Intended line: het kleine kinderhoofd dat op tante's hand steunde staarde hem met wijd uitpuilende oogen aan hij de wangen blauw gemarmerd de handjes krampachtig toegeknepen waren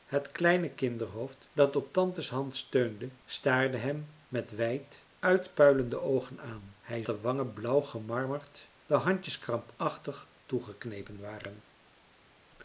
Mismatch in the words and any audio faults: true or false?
false